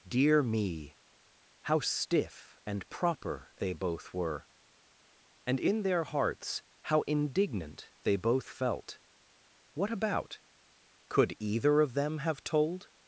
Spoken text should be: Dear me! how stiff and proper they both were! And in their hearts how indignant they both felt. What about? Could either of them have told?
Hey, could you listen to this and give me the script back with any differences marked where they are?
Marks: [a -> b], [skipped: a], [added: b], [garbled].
Dear me! how stiff and proper they both were! And in their hearts how indignant they both felt. What about? Could either of them have told?